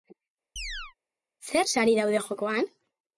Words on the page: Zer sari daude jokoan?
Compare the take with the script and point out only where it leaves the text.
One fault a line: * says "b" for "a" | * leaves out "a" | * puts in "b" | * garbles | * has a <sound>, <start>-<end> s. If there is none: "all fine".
* has a chirp, 0.6-0.9 s